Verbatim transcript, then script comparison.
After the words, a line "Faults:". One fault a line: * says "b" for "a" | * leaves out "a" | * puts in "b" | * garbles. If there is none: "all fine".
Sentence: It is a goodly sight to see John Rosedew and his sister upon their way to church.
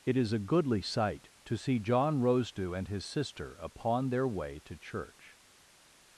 It is a goodly sight to see John Rosedew and his sister upon their way to church.
Faults:
all fine